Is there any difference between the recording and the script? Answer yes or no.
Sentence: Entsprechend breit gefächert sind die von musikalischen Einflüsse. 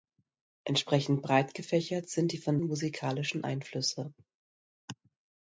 no